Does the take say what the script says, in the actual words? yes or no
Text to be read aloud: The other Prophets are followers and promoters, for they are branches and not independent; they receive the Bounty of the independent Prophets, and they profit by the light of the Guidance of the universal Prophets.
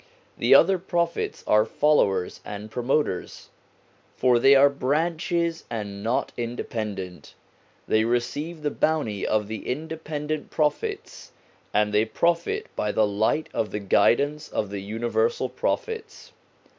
yes